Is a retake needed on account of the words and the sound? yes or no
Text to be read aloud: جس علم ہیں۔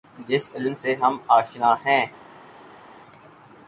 yes